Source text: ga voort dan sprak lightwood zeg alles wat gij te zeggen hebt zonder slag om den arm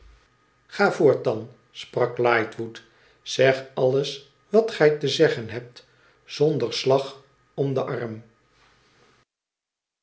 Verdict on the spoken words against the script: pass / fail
pass